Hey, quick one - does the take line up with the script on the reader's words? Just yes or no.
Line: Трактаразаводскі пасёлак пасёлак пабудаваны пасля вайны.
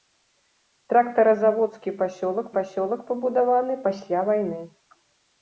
yes